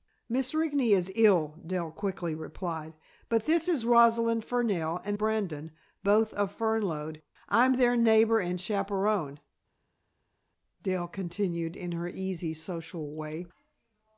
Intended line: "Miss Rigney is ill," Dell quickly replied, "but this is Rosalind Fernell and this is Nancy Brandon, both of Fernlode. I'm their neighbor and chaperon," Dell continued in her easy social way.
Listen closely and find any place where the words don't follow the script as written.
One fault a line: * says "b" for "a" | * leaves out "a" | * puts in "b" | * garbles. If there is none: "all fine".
* leaves out "this is Nancy"